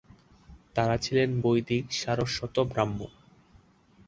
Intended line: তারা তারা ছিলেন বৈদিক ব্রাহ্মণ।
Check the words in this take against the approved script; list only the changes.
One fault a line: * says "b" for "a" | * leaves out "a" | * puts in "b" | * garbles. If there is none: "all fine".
* leaves out "তারা"
* puts in "সারস্বত"